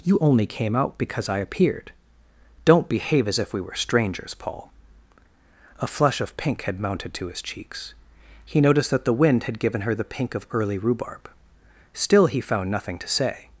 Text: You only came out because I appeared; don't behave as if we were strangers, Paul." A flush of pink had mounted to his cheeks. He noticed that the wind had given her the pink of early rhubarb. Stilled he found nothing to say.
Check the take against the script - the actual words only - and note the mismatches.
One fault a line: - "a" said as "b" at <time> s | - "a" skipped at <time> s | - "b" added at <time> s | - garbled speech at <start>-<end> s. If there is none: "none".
- "Stilled" said as "Still" at 11.9 s